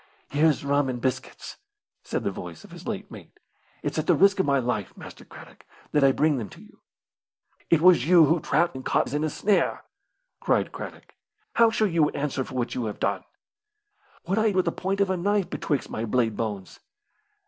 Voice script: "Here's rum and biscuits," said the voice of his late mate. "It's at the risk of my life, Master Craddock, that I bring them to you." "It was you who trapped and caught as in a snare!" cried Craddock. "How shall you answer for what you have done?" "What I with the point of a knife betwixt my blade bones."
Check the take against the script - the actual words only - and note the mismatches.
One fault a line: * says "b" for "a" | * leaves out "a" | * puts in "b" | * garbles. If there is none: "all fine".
all fine